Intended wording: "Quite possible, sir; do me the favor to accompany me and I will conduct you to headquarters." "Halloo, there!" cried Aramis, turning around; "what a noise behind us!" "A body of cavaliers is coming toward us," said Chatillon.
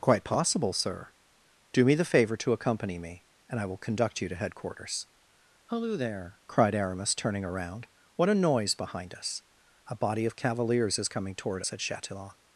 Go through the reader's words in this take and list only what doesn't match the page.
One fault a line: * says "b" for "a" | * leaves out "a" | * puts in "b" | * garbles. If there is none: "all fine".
* leaves out "us"